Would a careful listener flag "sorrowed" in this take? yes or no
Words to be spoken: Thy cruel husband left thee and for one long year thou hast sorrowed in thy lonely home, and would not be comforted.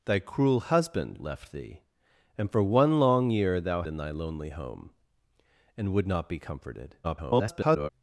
yes